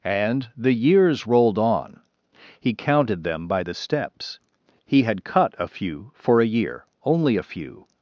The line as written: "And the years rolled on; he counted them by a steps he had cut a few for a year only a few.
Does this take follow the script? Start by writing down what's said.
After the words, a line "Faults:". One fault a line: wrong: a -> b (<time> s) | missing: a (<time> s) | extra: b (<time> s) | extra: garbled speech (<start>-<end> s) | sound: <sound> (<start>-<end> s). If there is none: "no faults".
"And the years rolled on; he counted them by the steps he had cut a few for a year only a few.
Faults:
wrong: a -> the (3.6 s)